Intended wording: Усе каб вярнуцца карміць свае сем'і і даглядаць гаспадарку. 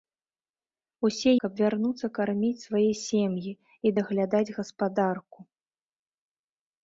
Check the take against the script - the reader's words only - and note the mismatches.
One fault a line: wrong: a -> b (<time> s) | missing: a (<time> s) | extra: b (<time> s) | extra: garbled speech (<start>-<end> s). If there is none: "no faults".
no faults